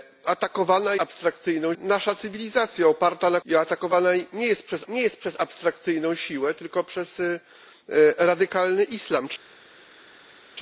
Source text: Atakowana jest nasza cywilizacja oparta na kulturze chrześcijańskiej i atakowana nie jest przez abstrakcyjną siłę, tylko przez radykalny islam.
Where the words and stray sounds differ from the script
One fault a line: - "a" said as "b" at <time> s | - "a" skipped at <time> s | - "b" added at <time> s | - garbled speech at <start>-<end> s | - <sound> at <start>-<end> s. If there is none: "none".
- "jest" said as "abstrakcyjną" at 1.0 s
- "kulturze chrześcijańskiej i atakowana" said as "i atakowana nie jest przez" at 3.4 s